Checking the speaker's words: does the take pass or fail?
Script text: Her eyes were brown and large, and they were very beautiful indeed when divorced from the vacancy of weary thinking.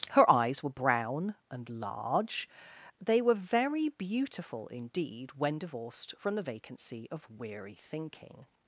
fail